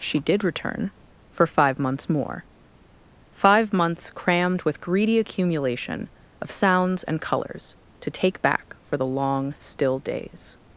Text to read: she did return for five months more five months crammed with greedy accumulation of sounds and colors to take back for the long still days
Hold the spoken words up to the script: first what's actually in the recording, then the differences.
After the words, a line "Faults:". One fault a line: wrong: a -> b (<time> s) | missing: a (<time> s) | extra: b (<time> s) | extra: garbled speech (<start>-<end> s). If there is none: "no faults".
she did return for five months more five months crammed with greedy accumulation of sounds and colors to take back for the long still days
Faults:
no faults